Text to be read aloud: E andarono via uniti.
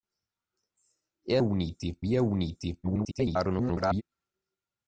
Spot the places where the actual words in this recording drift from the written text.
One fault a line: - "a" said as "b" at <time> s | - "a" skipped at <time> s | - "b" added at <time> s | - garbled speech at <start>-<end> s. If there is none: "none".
- "andarono" said as "uniti" at 1.4 s
- garbled speech at 2.8-4.0 s